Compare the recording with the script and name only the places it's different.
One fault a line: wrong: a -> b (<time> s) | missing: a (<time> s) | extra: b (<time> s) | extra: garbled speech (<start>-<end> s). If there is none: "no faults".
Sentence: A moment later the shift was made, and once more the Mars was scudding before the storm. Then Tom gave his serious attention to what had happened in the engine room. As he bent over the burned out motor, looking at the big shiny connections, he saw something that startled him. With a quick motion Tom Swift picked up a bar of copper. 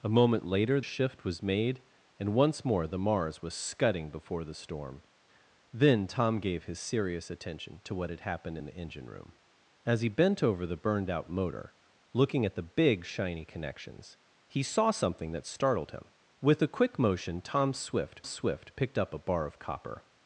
missing: the (0.8 s)
extra: Swift (18.2 s)